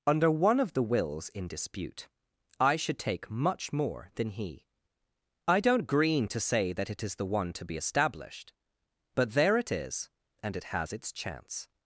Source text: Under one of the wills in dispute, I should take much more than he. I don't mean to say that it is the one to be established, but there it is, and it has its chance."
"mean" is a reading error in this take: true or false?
true